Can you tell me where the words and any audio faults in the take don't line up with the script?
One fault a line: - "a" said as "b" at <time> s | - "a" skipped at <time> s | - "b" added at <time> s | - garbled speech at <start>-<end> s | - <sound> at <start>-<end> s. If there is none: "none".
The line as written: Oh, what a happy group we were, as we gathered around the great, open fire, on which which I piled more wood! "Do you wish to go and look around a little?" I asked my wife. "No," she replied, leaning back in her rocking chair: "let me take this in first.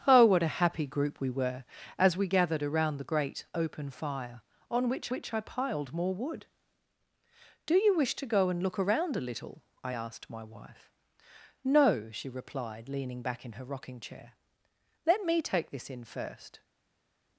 none